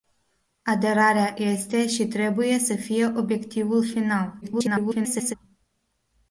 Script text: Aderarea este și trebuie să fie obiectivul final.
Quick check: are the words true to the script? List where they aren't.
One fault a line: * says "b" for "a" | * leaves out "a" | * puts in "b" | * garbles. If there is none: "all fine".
* garbles